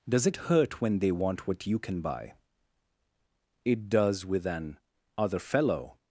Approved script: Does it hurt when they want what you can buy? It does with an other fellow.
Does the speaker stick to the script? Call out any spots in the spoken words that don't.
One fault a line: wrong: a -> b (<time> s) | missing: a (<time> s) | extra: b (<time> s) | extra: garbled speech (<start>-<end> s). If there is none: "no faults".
no faults